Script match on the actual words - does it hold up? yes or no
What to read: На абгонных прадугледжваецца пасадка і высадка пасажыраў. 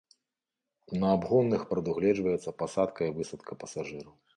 yes